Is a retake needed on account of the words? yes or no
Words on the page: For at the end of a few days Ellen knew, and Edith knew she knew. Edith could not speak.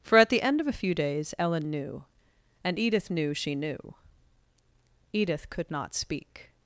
no